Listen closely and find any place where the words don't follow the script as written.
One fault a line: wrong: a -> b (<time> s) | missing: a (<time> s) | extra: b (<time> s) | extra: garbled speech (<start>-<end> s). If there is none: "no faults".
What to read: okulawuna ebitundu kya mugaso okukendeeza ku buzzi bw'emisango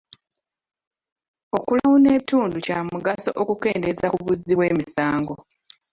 no faults